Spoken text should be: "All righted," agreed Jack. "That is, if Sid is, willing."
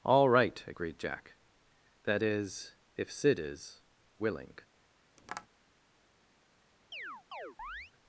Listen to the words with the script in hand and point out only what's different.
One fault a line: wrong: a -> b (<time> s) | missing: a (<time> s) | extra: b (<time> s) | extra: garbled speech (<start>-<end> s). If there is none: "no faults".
wrong: righted -> right (0.3 s)